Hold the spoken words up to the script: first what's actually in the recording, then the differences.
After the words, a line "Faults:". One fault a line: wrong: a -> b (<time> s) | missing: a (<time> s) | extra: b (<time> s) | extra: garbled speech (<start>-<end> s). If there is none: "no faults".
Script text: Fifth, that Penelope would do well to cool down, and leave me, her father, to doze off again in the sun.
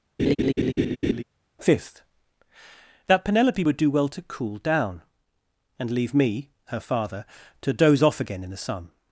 Fifth, that Penelope would do well to cool down, and leave me, her father, to doze off again in the sun.
Faults:
no faults